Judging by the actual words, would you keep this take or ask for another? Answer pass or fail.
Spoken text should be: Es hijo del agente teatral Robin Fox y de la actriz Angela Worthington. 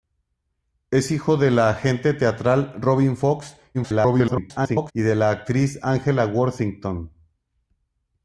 fail